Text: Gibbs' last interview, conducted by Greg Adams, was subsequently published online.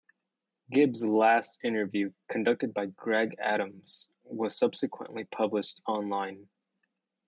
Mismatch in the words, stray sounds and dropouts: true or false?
false